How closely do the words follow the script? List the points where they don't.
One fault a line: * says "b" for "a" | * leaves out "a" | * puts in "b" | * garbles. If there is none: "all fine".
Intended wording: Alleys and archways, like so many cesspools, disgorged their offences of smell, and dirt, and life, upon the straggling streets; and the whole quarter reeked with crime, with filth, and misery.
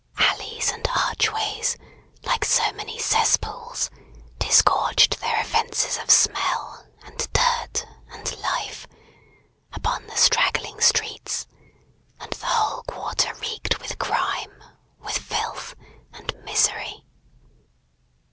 all fine